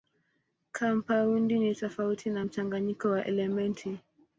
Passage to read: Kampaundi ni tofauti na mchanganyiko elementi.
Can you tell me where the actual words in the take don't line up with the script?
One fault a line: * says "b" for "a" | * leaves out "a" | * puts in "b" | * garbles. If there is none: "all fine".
* puts in "wa"